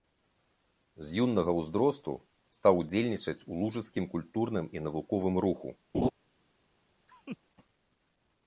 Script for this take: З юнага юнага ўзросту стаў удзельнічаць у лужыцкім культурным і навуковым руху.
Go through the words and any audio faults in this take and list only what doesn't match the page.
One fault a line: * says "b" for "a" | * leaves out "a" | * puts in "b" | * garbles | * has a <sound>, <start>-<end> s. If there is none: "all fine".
* leaves out "юнага"
* has a laugh, 5.9-6.1 s
* has a laugh, 7.1-7.4 s